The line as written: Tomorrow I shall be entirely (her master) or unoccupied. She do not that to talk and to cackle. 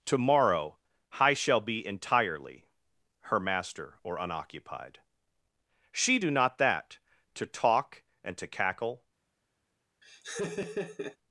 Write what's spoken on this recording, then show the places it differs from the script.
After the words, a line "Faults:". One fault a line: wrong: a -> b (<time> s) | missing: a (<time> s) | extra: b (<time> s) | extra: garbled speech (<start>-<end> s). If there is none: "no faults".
Tomorrow I shall be entirely (her master) or unoccupied. She do not that to talk and to cackle.
Faults:
no faults